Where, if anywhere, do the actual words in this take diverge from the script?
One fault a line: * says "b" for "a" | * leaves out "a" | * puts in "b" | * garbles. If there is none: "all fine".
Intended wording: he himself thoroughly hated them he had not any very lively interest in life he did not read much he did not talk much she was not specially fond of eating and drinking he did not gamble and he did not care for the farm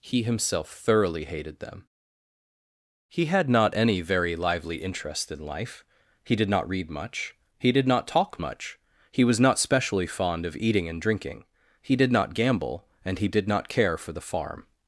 * says "he" for "she"